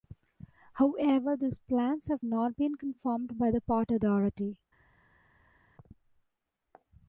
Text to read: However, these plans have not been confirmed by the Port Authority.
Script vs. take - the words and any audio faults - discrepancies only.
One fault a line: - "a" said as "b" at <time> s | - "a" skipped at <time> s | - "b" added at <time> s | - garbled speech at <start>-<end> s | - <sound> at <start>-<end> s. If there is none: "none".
none